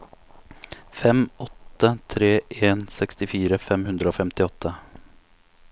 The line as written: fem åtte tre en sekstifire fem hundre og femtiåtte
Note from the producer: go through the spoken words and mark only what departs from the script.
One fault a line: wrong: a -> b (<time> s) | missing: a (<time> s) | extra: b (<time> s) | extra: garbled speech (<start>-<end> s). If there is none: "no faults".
no faults